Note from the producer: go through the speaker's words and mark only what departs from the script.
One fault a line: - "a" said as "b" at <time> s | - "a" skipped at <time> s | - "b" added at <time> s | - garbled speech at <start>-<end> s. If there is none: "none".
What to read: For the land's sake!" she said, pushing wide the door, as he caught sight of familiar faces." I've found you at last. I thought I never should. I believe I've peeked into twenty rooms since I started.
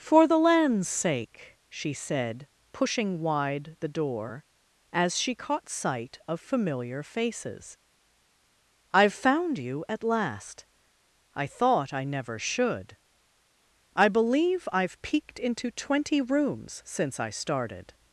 - "he" said as "she" at 5.2 s